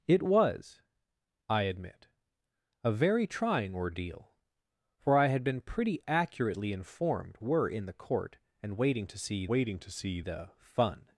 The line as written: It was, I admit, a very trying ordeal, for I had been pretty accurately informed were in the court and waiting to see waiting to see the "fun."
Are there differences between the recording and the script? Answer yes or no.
no